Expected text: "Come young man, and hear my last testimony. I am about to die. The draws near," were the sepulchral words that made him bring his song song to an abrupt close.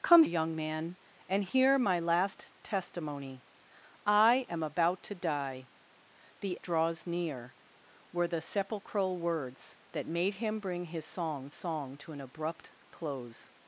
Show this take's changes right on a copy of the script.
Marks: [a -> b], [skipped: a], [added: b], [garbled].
"Come young man, and hear my last testimony. I am about to die. The draws near," were the sepulchral words that made him bring his song song to an abrupt close.